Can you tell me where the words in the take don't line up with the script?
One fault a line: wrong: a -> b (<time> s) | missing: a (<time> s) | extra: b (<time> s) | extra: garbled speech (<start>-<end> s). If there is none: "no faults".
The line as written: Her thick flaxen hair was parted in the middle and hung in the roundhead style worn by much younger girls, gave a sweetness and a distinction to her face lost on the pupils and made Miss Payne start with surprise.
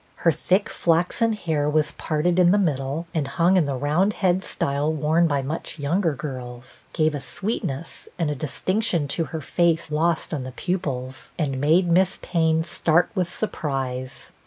no faults